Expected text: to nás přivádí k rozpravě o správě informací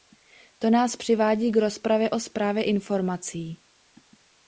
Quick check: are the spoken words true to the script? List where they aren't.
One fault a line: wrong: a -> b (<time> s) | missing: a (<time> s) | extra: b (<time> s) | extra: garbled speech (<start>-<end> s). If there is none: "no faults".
no faults